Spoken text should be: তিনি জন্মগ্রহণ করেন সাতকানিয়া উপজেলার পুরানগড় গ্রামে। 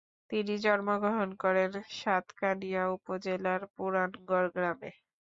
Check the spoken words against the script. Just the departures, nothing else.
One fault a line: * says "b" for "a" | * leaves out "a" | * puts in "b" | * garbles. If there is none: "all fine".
all fine